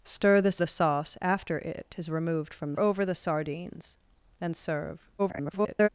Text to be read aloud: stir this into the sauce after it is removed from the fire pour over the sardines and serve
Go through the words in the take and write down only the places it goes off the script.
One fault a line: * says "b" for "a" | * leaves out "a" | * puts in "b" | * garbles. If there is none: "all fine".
* leaves out "into"
* leaves out "fire pour"
* garbles